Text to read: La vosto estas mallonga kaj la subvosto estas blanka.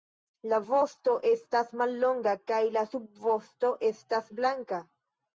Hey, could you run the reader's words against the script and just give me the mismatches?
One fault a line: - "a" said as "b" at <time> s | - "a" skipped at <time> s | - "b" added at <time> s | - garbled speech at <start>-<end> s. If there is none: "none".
none